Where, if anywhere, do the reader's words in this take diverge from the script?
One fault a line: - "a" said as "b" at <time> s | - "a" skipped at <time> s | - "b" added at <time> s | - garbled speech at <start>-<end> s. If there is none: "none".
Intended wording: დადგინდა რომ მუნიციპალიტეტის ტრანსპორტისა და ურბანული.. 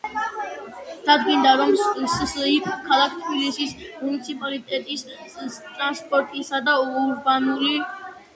- "სსიპ ქალაქ თბილისის" added at 2.1 s